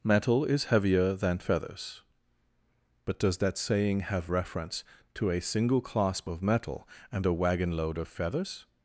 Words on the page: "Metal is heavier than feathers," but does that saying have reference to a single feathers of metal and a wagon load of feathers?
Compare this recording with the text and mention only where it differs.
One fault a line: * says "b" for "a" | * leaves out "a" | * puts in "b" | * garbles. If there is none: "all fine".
* says "clasp" for "feathers"